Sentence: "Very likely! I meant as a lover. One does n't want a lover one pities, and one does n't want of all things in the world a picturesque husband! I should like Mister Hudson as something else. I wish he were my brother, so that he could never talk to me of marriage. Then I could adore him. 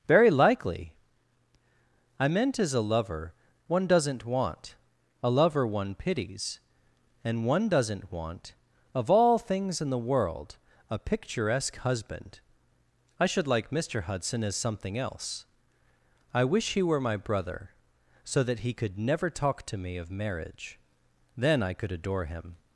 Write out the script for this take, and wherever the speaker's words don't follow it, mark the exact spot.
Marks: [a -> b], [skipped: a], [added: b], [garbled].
"Very likely! I meant as a lover. One does n't want a lover one pities, and one does n't want of all things in the world a picturesque husband! I should like Mister Hudson as something else. I wish he were my brother, so that he could never talk to me of marriage. Then I could adore him.